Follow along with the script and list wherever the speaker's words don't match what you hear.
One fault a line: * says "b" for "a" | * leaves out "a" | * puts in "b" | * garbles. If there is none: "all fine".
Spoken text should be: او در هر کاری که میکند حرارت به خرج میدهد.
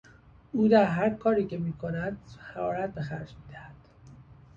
all fine